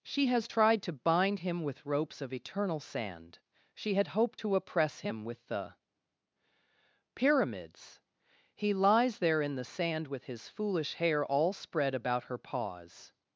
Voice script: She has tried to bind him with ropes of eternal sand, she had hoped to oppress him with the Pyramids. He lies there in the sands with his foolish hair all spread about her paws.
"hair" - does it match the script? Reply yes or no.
yes